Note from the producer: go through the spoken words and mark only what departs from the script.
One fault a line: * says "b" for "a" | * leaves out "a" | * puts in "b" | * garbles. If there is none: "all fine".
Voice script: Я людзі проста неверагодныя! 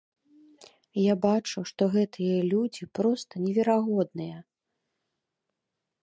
* puts in "бачу што гэтыя"